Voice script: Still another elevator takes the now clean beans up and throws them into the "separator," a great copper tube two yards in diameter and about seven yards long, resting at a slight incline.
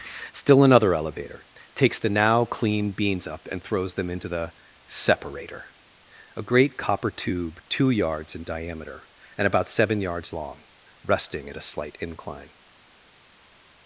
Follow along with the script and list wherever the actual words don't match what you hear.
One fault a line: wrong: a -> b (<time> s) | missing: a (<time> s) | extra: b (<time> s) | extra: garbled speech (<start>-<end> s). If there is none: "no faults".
no faults